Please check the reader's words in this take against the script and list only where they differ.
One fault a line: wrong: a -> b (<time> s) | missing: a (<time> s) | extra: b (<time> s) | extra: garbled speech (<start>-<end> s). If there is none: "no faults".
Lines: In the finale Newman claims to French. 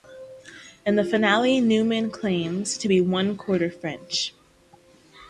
extra: be one quarter (2.9 s)